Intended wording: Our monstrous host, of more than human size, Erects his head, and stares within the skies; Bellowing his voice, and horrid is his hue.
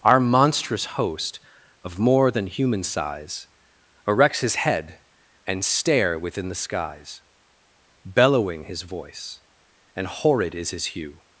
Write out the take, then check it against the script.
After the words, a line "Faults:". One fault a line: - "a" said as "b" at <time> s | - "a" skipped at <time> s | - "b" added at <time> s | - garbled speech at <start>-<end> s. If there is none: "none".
Our monstrous host, of more than human size, Erects his head, and stare within the skies; Bellowing his voice, and horrid is his hue.
Faults:
- "stares" said as "stare" at 5.6 s